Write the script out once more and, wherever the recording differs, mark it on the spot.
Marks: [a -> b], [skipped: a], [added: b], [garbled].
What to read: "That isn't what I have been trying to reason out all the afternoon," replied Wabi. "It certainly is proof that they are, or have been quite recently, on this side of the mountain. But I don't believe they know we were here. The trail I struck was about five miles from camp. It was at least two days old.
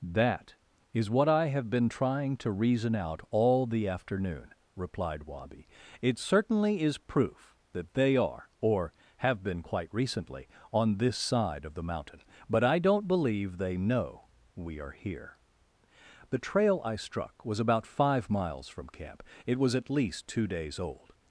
"That [isn't -> is] what I have been trying to reason out all the afternoon," replied Wabi. "It certainly is proof that they are, or have been quite recently, on this side of the mountain. But I don't believe they know we [were -> are] here. The trail I struck was about five miles from camp. It was at least two days old.